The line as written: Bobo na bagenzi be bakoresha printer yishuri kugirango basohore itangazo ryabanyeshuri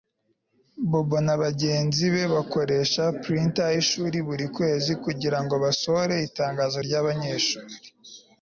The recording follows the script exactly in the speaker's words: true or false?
false